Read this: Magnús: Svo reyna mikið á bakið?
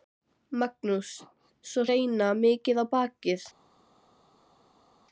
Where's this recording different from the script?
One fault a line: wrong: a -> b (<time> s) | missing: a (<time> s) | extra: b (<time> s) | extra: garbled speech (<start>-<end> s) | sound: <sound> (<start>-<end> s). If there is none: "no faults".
no faults